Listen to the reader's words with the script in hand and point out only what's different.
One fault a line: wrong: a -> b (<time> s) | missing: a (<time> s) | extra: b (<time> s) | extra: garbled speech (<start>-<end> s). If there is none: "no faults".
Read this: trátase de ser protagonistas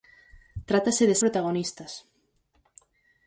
missing: ser (1.1 s)